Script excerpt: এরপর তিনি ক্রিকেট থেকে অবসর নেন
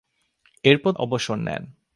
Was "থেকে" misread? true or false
true